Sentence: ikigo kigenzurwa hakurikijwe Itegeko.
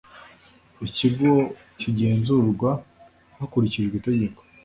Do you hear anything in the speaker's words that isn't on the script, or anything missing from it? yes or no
no